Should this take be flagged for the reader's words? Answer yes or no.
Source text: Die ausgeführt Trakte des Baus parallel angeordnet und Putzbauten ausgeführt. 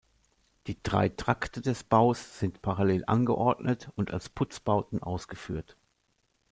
yes